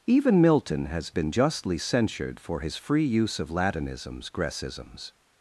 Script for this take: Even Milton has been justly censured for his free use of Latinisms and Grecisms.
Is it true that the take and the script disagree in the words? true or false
true